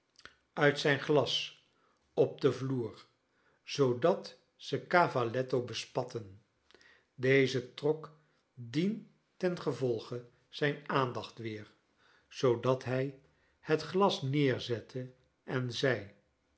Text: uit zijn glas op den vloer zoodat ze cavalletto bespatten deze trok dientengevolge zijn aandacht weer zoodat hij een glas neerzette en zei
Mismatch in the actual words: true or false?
true